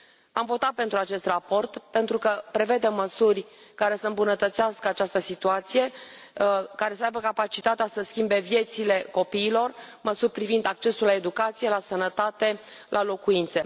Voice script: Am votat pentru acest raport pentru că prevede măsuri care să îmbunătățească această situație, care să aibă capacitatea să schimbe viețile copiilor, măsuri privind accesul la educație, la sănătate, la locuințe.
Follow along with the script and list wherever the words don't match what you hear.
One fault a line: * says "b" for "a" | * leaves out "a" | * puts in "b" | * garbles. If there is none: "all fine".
all fine